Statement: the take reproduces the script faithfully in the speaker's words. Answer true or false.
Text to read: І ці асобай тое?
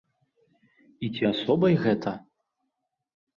false